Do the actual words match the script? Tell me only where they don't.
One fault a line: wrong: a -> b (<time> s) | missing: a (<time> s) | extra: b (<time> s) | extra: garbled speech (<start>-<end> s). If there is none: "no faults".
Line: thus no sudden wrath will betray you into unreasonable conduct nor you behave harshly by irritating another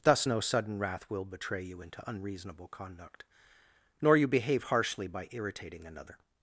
no faults